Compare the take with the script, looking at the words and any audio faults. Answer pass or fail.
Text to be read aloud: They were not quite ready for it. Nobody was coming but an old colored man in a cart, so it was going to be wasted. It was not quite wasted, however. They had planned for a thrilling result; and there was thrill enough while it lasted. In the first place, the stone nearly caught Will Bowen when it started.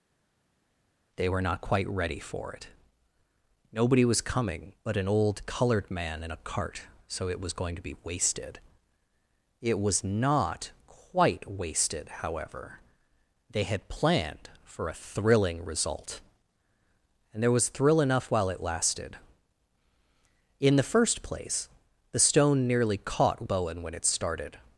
fail